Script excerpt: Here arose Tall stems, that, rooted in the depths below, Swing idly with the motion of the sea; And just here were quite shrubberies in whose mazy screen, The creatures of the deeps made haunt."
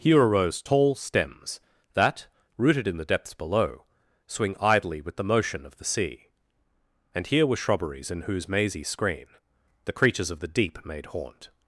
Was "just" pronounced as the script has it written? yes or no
no